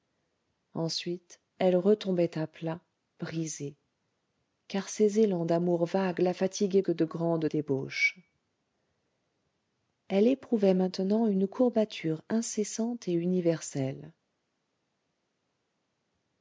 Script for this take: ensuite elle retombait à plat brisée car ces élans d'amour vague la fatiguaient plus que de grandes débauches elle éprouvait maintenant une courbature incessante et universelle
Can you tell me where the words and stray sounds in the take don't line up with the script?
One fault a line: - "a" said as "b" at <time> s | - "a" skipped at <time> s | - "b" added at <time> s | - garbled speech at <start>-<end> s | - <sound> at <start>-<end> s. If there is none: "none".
- "plus" skipped at 6.8 s